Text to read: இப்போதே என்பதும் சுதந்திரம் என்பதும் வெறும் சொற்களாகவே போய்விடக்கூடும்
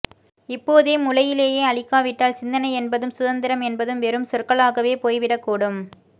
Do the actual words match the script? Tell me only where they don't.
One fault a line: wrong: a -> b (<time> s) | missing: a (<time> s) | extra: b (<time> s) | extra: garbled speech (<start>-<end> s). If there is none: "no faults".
extra: முளையிலேயே அழிக்காவிட்டால் சிந்தனை (1.0 s)